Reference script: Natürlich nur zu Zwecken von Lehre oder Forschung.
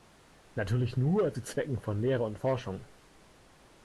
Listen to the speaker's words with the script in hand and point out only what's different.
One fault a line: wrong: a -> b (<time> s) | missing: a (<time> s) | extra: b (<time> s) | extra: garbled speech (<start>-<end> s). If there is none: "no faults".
wrong: oder -> und (2.2 s)